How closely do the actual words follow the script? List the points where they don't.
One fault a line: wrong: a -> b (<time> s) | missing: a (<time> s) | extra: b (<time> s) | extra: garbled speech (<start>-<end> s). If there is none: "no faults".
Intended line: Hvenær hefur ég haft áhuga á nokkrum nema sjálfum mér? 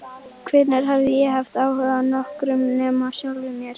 wrong: hefur -> hafði (0.9 s)